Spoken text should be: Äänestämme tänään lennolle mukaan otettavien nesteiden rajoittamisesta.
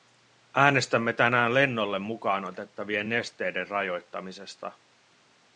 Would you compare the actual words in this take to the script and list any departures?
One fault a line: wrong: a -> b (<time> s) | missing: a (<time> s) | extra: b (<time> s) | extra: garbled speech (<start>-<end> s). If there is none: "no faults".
no faults